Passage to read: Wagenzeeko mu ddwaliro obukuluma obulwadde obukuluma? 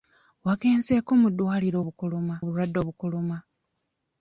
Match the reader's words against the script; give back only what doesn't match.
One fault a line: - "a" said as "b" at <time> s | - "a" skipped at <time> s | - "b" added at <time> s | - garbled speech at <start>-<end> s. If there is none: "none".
none